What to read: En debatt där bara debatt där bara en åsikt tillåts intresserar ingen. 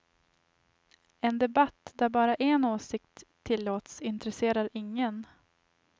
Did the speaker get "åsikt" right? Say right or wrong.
right